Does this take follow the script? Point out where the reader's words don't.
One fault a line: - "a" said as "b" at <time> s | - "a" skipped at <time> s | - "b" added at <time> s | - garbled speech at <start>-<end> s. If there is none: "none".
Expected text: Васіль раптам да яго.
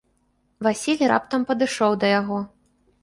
- "падышоў" added at 1.5 s